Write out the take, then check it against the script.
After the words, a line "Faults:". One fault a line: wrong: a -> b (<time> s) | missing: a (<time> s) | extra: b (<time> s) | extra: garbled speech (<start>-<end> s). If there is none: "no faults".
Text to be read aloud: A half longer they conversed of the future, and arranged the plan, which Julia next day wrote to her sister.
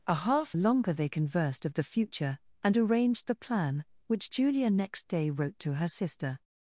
A half longer they conversed of the future, and arranged the plan, which Julia next day wrote to her sister.
Faults:
no faults